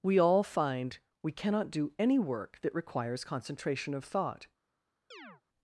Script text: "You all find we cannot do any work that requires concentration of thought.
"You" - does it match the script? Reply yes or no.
no